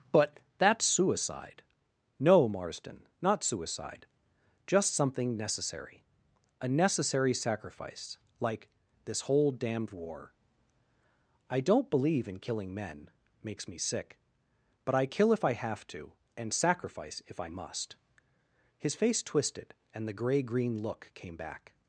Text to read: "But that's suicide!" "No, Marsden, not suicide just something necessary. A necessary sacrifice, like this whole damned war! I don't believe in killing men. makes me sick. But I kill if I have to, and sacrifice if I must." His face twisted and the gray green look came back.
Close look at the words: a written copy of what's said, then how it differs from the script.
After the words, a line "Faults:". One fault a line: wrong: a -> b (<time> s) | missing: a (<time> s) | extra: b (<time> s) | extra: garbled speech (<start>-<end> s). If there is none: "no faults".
"But that's suicide!" "No, Marsden, not suicide just something necessary. A necessary sacrifice, like this whole damned war! I don't believe in killing men. makes me sick. But I kill if I have to, and sacrifice if I must." His face twisted and the gray green look came back.
Faults:
no faults